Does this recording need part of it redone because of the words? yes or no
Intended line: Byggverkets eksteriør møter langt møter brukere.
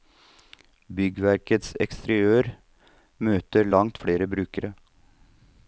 yes